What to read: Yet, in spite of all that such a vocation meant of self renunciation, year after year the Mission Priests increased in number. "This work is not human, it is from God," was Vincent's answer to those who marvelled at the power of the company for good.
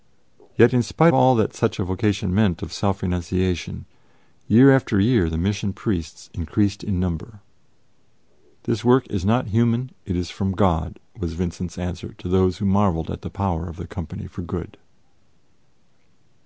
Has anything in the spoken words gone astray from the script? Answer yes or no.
yes